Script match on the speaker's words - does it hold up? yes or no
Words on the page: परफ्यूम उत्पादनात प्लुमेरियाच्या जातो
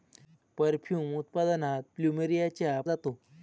yes